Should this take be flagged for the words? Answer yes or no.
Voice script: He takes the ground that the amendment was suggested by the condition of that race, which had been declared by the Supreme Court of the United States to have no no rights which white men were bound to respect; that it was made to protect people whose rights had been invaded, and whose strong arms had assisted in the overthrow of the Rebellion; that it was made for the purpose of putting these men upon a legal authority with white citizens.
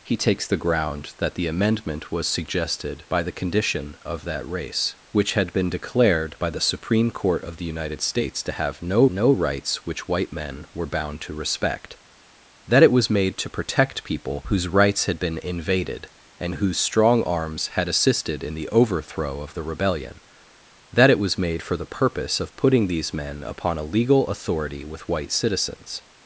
no